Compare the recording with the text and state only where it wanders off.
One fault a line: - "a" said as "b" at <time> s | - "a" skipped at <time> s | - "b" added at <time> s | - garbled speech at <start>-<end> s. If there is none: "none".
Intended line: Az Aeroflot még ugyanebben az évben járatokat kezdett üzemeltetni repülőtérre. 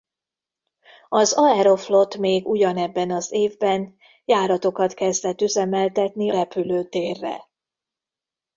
none